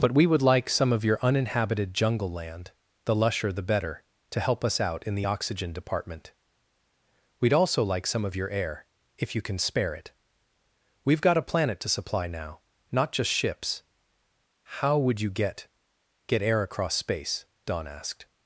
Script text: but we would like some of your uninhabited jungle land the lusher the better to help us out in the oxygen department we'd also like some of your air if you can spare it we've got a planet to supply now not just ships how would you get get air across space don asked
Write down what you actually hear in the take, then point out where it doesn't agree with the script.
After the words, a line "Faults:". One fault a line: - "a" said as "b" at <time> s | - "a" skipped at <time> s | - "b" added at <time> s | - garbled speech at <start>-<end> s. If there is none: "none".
but we would like some of your uninhabited jungle land the lusher the better to help us out in the oxygen department we'd also like some of your air if you can spare it we've got a planet to supply now not just ships how would you get get air across space don asked
Faults:
none